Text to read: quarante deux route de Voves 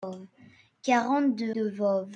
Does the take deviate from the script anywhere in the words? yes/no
yes